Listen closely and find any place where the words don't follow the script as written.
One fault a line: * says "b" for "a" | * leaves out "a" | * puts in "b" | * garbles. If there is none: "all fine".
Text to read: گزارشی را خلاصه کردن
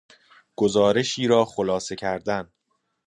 all fine